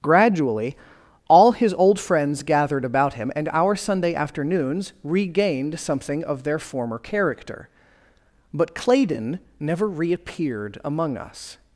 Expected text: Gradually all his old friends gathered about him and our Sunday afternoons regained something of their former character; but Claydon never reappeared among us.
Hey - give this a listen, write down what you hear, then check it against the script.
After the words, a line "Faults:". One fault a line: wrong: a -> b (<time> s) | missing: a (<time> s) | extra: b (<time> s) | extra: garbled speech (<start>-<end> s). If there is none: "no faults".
Gradually all his old friends gathered about him and our Sunday afternoons regained something of their former character; but Claydon never reappeared among us.
Faults:
no faults